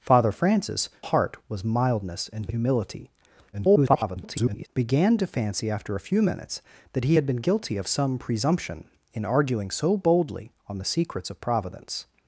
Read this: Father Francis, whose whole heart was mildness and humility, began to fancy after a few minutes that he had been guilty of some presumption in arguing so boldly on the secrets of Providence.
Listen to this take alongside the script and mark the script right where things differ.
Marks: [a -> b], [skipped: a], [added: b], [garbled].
Father Francis, [skipped: whose whole] heart was mildness and humility, [garbled] began to fancy after a few minutes that he had been guilty of some presumption in arguing so boldly on the secrets of Providence.